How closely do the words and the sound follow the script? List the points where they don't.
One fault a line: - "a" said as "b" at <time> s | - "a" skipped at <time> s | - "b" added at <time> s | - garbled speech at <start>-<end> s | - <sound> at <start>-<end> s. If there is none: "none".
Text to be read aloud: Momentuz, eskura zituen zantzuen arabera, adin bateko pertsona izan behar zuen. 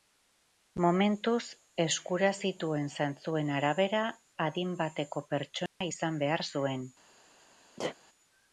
- dropout at 5.7-5.8 s
- sneeze at 7.8-8.0 s